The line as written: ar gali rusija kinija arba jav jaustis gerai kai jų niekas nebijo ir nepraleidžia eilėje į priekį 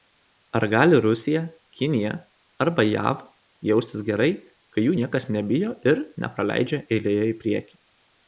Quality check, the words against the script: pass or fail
pass